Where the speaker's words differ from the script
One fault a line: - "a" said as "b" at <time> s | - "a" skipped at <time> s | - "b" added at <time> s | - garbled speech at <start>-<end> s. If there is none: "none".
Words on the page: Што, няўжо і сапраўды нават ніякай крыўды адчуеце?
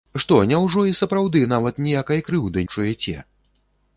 none